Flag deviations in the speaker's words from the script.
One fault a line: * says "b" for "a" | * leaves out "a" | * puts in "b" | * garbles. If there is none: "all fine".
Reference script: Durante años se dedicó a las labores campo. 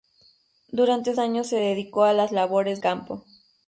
all fine